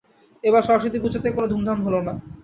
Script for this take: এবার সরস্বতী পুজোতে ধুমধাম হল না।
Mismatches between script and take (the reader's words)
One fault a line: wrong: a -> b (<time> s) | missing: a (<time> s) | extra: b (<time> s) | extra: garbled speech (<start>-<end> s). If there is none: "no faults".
extra: কোনো (1.3 s)